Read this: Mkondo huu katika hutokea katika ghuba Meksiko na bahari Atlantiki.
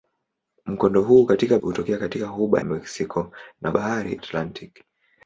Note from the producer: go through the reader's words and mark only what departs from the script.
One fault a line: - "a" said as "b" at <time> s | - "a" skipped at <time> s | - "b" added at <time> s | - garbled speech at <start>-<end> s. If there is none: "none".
none